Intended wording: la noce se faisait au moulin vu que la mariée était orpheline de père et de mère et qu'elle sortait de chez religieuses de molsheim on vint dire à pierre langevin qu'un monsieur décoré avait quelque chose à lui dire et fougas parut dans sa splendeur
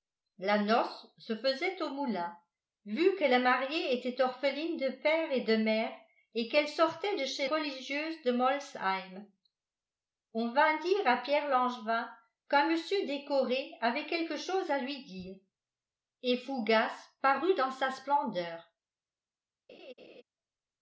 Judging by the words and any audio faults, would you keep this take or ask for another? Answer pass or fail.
fail